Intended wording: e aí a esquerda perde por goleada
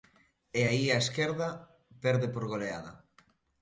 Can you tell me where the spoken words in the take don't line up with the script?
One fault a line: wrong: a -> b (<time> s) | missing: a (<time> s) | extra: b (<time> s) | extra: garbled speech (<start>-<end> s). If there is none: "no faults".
no faults